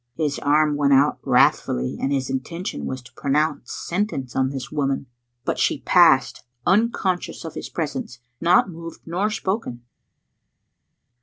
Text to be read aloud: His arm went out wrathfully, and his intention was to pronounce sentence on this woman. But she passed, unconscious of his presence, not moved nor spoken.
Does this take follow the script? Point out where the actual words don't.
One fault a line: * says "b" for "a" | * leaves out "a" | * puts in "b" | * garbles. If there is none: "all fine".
all fine